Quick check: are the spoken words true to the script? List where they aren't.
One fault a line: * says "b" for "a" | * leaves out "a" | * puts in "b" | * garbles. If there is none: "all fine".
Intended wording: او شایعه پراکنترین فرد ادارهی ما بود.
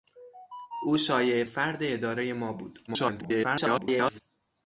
* leaves out "پراکنترین"
* garbles